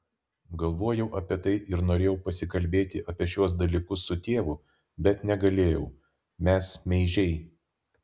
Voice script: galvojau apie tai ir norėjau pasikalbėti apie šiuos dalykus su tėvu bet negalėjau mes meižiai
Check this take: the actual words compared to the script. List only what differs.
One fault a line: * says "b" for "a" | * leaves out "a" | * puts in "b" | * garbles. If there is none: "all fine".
all fine